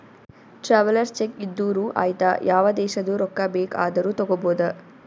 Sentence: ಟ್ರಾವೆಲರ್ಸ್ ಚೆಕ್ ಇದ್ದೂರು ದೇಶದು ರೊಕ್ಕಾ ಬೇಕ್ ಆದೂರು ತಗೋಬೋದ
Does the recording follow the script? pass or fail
fail